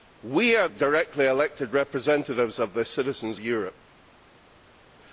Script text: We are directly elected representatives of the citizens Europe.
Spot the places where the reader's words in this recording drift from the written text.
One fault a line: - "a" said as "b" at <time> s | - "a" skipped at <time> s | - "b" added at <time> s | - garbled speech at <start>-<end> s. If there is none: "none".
none